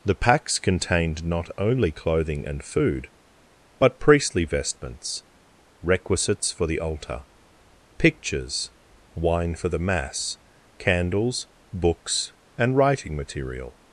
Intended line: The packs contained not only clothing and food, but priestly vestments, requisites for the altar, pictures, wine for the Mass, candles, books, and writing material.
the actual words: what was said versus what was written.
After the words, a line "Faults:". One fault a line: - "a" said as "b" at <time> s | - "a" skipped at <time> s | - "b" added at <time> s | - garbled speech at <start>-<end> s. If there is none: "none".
The packs contained not only clothing and food, but priestly vestments, requisites for the altar, pictures, wine for the Mass, candles, books, and writing material.
Faults:
none